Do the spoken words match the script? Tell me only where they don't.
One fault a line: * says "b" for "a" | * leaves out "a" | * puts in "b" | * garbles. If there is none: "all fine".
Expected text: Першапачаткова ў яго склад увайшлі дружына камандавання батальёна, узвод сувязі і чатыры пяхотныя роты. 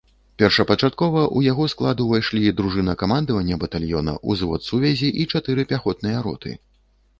all fine